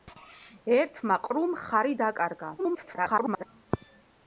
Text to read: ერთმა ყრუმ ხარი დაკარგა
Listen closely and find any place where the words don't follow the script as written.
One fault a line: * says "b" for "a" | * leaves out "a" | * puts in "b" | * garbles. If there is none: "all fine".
* garbles